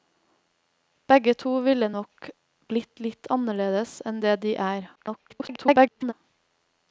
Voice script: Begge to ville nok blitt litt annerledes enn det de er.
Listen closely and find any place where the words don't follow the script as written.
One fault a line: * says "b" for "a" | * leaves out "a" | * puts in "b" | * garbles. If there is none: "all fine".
* garbles